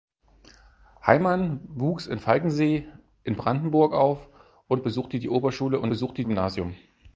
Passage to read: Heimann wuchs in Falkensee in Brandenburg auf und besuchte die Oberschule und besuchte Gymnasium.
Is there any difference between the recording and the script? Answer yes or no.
no